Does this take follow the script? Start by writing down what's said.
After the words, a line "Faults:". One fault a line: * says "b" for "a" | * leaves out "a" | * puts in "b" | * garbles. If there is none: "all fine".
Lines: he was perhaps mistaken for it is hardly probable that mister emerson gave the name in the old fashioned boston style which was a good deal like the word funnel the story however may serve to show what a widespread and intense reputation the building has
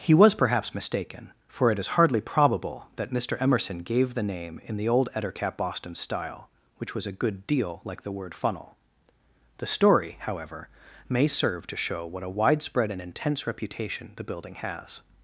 he was perhaps mistaken for it is hardly probable that mister emerson gave the name in the old ettercap boston style which was a good deal like the word funnel the story however may serve to show what a widespread and intense reputation the building has
Faults:
* says "ettercap" for "fashioned"